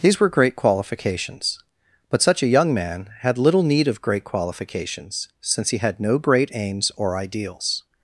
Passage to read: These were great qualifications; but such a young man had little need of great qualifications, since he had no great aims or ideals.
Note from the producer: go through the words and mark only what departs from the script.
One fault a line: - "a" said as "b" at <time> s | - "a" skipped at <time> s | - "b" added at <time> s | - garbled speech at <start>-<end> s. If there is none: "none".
none